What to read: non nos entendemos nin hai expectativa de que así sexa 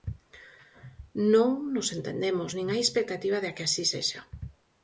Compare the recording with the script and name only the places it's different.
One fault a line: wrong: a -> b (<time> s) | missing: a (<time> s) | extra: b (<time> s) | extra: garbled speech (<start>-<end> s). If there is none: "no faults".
no faults